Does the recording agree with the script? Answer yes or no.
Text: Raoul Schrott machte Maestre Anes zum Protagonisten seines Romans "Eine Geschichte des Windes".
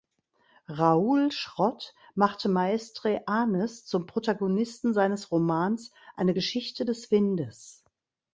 yes